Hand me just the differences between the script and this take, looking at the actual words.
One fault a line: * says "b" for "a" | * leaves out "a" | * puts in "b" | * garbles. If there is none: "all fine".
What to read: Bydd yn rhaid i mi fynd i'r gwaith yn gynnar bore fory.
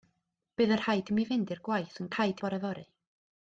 * says "rhaid" for "gynnar"